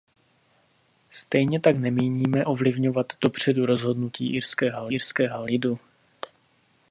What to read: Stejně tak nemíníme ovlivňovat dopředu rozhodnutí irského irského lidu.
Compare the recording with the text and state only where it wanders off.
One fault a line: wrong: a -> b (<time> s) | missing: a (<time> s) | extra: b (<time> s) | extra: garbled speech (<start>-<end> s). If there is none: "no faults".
no faults